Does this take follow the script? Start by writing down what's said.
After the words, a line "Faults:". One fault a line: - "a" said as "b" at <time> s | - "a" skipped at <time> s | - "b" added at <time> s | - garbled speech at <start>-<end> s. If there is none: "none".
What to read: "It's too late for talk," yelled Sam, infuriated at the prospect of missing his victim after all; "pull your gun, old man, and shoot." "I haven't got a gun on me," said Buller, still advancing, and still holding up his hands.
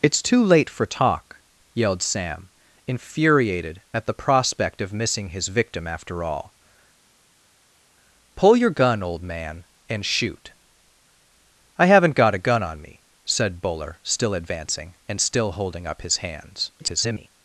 "It's too late for talk," yelled Sam, infuriated at the prospect of missing his victim after all; "pull your gun, old man, and shoot." "I haven't got a gun on me," said Buller, still advancing, and still holding up his hands. [garbled]
Faults:
- garbled speech at 16.8-17.3 s